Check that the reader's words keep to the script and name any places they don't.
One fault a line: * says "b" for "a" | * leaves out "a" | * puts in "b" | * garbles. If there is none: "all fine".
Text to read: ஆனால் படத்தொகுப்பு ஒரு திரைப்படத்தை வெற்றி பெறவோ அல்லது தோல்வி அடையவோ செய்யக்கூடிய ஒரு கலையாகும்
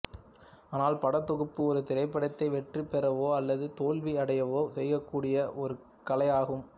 all fine